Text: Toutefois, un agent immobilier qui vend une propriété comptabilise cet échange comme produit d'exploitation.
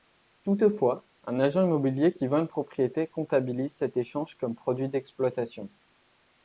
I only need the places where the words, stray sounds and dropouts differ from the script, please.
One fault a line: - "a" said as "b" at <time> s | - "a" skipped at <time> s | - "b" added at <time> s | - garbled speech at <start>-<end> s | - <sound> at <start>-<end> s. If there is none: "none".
none